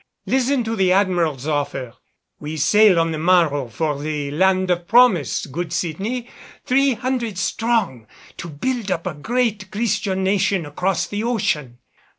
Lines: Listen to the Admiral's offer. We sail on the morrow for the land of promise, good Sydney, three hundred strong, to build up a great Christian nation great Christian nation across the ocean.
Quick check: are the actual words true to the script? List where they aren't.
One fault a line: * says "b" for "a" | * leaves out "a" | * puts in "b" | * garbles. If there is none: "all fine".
* leaves out "great Christian nation"